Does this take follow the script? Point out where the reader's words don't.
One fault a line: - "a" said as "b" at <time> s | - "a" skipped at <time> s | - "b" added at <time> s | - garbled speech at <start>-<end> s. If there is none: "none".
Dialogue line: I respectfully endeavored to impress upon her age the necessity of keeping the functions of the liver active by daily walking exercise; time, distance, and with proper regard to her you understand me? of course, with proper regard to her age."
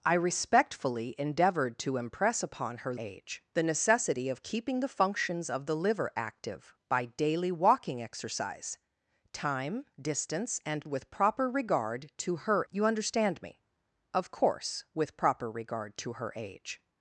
none